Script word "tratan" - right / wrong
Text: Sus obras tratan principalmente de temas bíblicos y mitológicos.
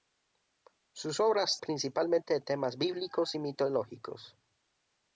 wrong